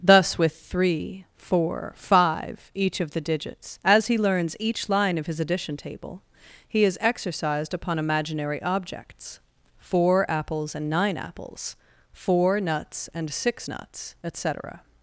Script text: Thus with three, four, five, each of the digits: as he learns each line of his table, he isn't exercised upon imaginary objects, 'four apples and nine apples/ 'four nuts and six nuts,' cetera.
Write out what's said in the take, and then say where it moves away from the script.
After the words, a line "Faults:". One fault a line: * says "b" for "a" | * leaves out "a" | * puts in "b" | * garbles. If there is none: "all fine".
Thus with three, four, five, each of the digits: as he learns each line of his addition table, he is exercised upon imaginary objects, 'four apples and nine apples/ 'four nuts and six nuts,' et cetera.
Faults:
* puts in "addition"
* says "is" for "isn't"
* puts in "et"